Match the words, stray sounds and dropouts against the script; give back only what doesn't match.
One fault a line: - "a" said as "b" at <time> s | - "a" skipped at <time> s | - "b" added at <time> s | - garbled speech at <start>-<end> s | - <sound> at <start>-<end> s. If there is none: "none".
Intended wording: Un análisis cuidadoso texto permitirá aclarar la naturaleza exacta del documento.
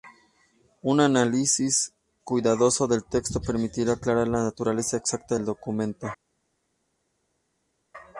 - "del" added at 2.9 s